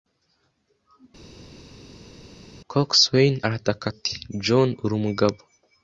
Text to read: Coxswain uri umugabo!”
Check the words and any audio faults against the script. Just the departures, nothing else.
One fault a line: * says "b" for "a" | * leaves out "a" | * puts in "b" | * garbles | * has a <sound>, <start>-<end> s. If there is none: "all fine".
* puts in "arataka ati John"